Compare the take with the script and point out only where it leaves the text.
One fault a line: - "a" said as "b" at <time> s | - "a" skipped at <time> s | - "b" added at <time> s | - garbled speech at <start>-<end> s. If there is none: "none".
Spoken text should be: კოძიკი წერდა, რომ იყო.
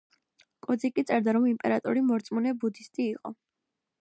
- "იმპერატორი მორწმუნე ბუდისტი" added at 1.5 s